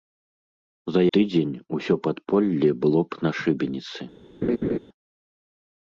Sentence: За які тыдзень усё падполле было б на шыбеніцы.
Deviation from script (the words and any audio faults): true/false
true